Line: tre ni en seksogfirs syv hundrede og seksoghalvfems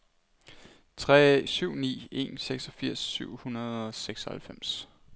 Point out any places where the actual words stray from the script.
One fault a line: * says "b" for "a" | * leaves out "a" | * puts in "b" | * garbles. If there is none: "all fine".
* puts in "syv"